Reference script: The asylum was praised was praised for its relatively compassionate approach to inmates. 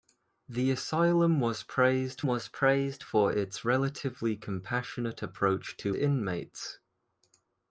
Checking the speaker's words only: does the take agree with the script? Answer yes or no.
yes